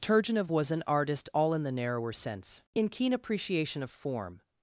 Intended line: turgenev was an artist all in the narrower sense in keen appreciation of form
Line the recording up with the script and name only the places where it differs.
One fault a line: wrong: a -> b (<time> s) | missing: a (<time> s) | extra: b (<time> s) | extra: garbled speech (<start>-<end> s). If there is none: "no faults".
no faults